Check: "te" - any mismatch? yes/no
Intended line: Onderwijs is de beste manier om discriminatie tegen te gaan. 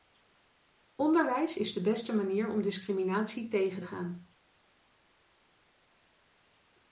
yes